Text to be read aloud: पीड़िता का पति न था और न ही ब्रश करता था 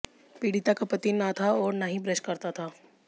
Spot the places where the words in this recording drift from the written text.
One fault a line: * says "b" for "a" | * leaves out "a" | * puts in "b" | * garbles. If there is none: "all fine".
all fine